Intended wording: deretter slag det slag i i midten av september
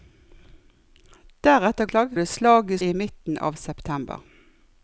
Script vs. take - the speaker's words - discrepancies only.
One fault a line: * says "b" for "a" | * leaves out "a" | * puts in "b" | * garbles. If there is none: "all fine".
all fine